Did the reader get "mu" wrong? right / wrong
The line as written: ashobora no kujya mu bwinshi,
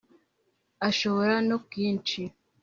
wrong